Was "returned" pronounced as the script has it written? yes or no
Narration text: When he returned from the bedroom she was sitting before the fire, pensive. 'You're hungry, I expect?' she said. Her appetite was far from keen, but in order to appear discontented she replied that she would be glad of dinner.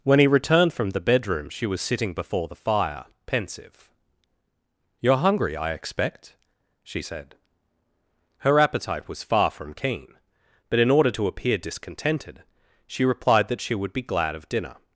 yes